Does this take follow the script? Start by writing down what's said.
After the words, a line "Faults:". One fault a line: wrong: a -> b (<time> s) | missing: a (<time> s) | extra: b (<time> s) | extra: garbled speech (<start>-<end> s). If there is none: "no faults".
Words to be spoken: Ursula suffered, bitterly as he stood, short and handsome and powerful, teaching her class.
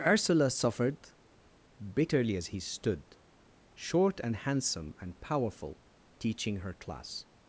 Ursula suffered, bitterly as he stood, short and handsome and powerful, teaching her class.
Faults:
no faults